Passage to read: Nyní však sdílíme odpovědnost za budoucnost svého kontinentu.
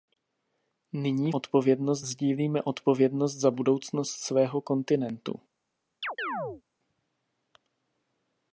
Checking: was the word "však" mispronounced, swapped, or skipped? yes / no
yes